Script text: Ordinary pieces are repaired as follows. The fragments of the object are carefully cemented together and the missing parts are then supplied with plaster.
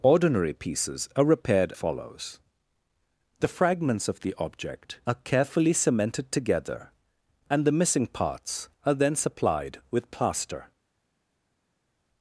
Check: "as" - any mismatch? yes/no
yes